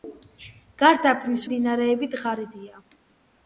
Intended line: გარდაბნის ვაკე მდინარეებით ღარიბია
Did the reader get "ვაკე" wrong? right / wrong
wrong